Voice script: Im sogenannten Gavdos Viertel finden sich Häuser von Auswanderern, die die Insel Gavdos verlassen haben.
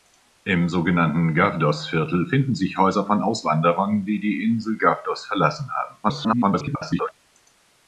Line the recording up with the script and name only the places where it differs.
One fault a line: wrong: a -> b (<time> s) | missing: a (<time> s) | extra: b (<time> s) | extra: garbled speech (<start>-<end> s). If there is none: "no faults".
extra: garbled speech (6.0-7.1 s)